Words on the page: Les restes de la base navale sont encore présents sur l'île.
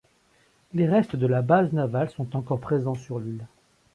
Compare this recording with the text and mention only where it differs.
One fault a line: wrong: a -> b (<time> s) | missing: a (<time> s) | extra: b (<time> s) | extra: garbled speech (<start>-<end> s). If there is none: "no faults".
no faults